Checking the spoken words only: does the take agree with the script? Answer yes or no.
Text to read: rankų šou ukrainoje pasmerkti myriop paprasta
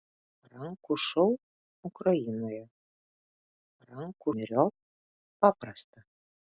no